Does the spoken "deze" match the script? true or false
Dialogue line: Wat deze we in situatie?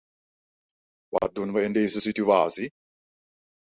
false